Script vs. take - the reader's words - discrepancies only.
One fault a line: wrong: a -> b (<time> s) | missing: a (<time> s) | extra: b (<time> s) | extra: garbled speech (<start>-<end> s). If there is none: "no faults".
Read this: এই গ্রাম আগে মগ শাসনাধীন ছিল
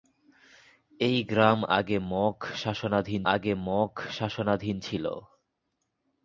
extra: আগে মগ শাসনাধীন (3.3 s)